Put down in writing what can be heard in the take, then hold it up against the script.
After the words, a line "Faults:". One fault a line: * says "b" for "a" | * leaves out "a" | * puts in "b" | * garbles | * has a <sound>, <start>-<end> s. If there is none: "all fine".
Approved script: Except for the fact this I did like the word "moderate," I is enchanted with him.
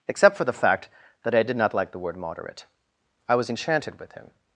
Except for the fact that I did not like the word "moderate," I was enchanted with him.
Faults:
* says "that" for "this"
* puts in "not"
* says "was" for "is"